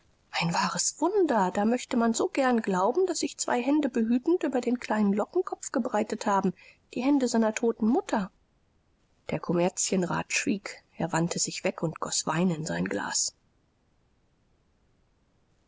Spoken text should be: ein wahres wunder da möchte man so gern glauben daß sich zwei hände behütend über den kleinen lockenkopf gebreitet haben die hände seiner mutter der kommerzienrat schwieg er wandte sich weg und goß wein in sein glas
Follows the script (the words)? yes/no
no